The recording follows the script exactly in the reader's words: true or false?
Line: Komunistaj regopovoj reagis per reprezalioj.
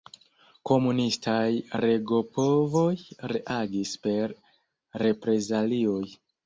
true